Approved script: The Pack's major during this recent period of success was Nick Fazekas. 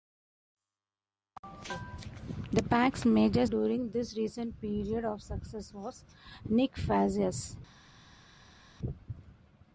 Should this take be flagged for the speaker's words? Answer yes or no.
no